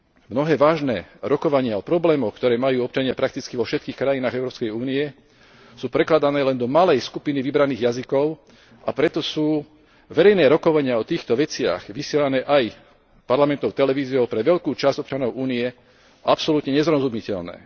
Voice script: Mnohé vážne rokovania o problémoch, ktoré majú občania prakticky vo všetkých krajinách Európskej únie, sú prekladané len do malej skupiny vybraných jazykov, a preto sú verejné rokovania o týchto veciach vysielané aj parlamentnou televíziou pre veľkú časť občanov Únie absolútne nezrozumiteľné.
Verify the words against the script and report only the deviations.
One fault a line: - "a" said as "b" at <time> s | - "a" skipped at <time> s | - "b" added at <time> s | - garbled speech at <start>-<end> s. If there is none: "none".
none